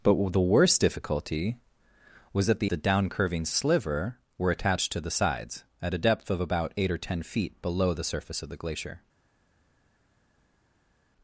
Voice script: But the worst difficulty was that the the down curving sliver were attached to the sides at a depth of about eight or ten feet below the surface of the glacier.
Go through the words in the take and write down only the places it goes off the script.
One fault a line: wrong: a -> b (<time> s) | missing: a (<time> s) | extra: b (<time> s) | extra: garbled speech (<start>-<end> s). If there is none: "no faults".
no faults